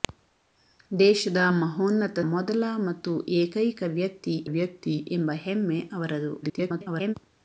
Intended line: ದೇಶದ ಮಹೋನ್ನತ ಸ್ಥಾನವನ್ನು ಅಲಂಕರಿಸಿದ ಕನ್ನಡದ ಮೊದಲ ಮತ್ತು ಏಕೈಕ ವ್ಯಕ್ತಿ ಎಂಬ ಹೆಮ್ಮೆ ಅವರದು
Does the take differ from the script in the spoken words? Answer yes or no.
yes